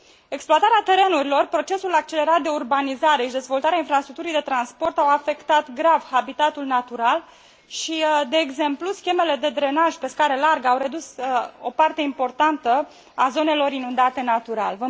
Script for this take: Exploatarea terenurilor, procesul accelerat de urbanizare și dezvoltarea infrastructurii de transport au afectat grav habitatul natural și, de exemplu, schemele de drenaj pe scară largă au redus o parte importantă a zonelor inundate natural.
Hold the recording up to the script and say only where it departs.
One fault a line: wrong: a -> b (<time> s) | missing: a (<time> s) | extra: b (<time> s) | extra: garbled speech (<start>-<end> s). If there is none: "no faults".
no faults